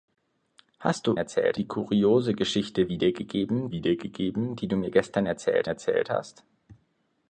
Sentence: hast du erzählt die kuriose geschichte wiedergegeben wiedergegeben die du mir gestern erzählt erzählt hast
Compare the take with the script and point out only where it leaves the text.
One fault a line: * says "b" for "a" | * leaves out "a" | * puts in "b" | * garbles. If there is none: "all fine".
all fine